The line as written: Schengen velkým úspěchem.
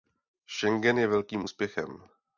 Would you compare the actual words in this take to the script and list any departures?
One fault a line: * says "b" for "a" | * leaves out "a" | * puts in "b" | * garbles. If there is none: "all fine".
* puts in "je"